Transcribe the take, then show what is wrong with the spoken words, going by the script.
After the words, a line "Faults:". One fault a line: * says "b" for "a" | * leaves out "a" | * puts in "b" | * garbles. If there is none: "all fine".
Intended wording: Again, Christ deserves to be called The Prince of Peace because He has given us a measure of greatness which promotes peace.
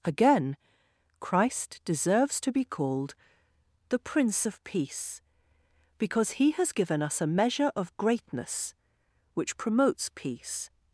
Again, Christ deserves to be called The Prince of Peace because He has given us a measure of greatness which promotes peace.
Faults:
all fine